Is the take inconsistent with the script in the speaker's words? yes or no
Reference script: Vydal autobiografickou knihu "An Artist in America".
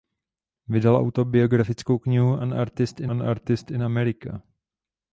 yes